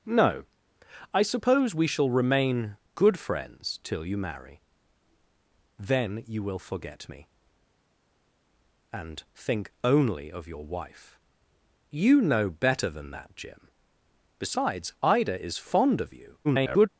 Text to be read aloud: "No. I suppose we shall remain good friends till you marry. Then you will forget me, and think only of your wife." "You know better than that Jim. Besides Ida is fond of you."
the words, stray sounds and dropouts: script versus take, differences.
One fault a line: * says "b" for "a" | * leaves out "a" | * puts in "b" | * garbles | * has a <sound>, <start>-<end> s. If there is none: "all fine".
* garbles